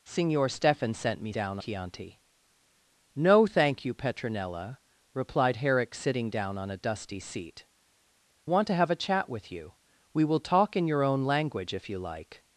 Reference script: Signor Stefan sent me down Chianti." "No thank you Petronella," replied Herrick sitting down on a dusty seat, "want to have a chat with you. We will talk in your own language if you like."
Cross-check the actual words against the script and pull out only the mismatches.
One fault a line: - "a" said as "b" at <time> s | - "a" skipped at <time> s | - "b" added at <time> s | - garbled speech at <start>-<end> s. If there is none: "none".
none